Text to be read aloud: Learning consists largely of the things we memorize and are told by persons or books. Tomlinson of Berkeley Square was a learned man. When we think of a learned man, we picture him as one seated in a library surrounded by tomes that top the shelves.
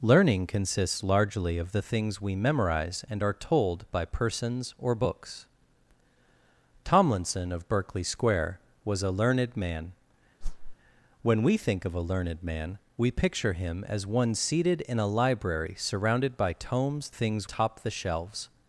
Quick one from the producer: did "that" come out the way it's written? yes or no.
no